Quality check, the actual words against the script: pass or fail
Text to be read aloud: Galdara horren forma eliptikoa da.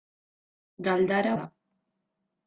fail